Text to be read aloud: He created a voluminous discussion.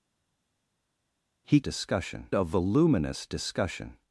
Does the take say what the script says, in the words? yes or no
no